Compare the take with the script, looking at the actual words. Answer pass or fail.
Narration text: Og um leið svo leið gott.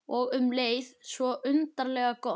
fail